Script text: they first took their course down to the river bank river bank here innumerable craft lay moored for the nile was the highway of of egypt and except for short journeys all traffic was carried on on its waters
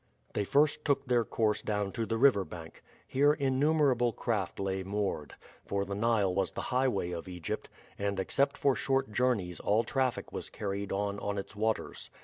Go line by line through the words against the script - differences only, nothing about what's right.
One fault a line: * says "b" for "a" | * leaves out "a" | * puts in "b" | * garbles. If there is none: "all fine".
* leaves out "river bank"
* leaves out "of"